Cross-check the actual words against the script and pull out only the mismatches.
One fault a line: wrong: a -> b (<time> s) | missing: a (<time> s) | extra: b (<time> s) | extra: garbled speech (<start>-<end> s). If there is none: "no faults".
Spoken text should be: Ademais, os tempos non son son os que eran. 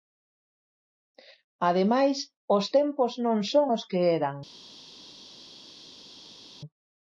missing: son (3.7 s)